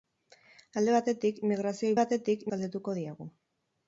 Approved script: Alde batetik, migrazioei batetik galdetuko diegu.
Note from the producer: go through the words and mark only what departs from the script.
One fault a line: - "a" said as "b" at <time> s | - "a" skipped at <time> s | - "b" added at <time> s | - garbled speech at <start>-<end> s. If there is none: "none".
none